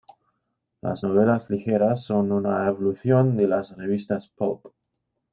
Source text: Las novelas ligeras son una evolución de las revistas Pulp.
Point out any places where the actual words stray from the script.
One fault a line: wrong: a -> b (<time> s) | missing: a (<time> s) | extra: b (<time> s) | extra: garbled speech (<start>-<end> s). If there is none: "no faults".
no faults